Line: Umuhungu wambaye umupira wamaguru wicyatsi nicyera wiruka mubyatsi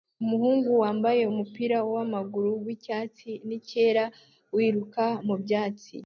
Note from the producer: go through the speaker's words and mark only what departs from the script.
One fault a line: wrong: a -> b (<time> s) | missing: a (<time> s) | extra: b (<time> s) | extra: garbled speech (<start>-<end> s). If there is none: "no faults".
no faults